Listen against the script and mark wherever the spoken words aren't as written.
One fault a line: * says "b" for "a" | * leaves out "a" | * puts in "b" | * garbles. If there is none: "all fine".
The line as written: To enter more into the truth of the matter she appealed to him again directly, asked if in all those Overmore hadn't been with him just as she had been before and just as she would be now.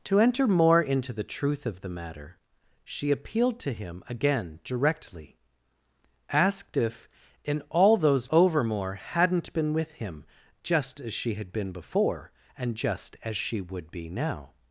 all fine